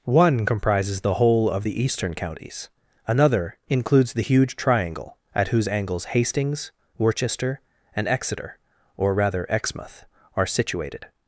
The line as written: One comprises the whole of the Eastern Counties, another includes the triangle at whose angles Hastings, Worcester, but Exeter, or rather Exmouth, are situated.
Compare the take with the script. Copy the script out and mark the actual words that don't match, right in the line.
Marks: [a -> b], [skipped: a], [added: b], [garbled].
One comprises the whole of the Eastern Counties, another includes the [added: huge] triangle at whose angles Hastings, Worcester, [but -> and] Exeter, or rather Exmouth, are situated.